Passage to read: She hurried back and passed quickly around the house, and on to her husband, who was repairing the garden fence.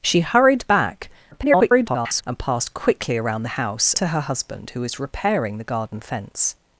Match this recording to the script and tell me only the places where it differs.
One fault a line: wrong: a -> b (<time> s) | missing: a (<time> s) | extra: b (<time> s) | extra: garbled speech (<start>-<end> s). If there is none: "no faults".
extra: garbled speech (1.3-2.2 s)
missing: and on (3.9 s)